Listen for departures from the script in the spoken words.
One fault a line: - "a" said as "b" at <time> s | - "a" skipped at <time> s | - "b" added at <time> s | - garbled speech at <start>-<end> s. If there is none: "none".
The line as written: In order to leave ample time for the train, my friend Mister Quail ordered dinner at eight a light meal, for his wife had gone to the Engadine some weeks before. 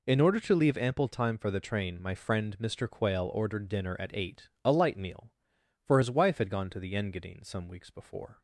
none